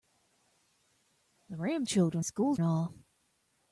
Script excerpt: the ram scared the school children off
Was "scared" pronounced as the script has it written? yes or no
no